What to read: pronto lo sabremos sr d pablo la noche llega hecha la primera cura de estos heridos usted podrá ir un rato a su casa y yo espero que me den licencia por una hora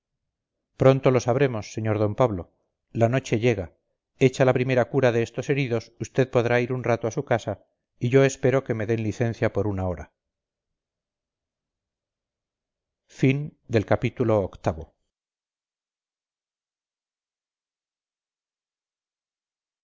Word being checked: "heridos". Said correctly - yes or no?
yes